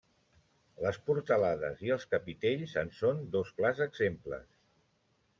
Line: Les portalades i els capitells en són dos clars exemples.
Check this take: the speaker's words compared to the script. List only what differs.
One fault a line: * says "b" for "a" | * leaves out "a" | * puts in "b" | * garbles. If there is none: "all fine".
all fine